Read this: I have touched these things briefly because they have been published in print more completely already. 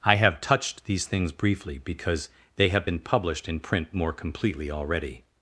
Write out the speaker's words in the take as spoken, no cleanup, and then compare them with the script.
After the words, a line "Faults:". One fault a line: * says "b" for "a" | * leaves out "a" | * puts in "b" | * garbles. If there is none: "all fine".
I have touched these things briefly because they have been published in print more completely already.
Faults:
all fine